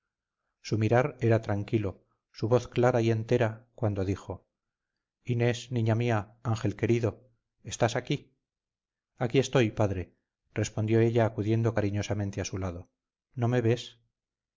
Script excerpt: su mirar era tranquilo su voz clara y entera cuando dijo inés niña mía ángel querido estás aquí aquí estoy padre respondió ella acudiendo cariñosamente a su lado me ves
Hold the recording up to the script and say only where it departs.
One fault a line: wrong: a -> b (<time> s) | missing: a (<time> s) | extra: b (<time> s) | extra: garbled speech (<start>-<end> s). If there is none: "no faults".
extra: no (13.3 s)